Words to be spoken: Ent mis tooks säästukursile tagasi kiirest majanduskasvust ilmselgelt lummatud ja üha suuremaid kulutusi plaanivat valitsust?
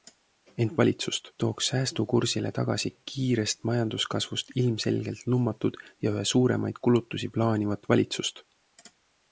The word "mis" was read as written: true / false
false